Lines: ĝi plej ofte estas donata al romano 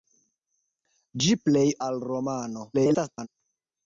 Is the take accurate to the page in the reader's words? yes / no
no